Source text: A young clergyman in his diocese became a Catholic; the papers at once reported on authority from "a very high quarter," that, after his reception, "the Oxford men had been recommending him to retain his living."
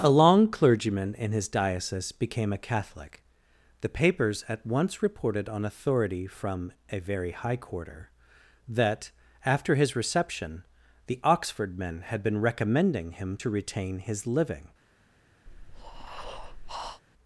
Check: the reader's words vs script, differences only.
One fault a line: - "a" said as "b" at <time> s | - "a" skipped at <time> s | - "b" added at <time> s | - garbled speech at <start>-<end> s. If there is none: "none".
- "young" said as "long" at 0.1 s